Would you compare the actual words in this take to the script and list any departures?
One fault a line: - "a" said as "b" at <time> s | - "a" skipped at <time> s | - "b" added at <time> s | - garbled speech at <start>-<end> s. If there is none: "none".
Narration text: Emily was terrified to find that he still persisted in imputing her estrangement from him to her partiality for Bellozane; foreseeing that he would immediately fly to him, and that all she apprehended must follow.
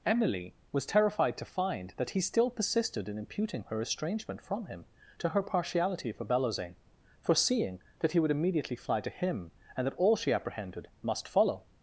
none